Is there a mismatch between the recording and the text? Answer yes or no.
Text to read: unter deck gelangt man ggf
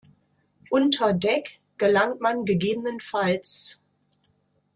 no